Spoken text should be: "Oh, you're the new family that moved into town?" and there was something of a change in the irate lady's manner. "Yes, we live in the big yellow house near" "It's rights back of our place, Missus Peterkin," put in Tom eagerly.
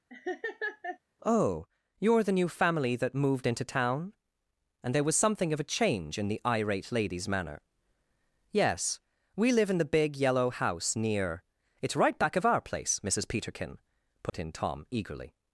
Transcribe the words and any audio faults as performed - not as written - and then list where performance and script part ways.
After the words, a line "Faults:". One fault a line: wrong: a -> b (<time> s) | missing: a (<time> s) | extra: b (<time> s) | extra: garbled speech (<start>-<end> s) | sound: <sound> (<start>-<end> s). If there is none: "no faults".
"Oh, you're the new family that moved into town?" and there was something of a change in the irate lady's manner. "Yes, we live in the big yellow house near" "It's right back of our place, Missus Peterkin," put in Tom eagerly.
Faults:
sound: laugh (0.1-1.0 s)
wrong: rights -> right (12.0 s)
sound: dropout (14.3-14.3 s)